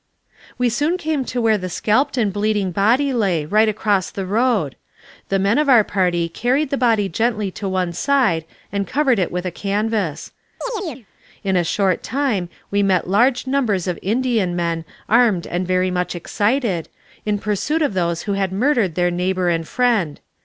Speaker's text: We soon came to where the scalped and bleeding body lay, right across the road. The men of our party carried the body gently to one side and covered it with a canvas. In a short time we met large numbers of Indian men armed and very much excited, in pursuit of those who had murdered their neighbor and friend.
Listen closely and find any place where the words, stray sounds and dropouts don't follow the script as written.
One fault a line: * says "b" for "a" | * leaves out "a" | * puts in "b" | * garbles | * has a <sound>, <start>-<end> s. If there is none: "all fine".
* has a chirp, 10.6-11.1 s